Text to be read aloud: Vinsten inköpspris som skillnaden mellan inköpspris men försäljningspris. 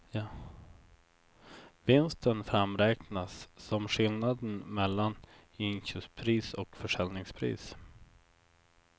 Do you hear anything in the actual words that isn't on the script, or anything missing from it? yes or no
yes